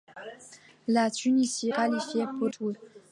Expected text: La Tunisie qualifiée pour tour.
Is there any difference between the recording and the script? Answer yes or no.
no